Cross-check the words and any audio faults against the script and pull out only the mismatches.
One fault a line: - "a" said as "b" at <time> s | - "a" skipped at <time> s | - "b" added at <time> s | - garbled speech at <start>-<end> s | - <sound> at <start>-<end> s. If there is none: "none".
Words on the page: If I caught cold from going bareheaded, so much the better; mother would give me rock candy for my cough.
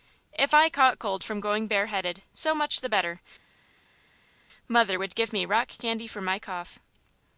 none